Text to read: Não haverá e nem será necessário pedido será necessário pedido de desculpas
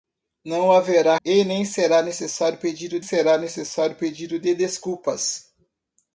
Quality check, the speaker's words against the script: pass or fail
pass